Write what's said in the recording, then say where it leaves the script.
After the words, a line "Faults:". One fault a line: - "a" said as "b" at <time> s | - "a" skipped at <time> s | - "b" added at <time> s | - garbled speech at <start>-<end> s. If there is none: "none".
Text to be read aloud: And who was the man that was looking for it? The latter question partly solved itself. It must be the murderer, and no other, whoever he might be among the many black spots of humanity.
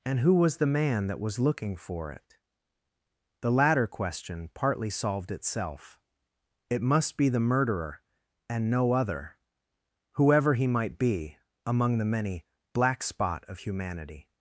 And who was the man that was looking for it? The latter question partly solved itself. It must be the murderer, and no other, whoever he might be among the many black spot of humanity.
Faults:
- "spots" said as "spot" at 13.0 s